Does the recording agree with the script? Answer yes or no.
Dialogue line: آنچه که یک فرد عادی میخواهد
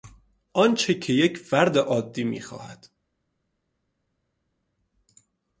yes